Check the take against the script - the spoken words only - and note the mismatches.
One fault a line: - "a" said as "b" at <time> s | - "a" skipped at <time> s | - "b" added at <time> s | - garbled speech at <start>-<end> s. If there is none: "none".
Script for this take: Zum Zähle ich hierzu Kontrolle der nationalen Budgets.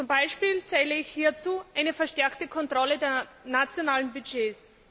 - "Beispiel" added at 0.1 s
- "eine verstärkte" added at 1.8 s